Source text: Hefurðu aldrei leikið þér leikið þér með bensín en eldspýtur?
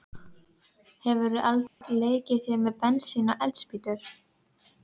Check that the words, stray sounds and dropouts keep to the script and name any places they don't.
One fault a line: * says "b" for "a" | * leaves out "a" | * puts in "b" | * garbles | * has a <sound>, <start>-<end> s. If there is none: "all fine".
* has a dropout, 1.7-1.8 s
* leaves out "leikið þér"
* says "og" for "en"